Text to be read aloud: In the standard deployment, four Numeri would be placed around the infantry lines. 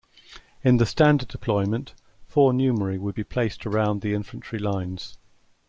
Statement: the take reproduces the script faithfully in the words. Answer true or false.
true